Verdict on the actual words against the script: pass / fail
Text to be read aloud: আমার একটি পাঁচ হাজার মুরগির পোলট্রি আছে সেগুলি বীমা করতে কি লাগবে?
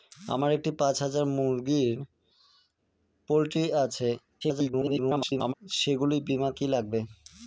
fail